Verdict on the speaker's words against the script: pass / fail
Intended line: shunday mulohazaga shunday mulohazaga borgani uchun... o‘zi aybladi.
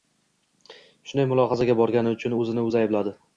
fail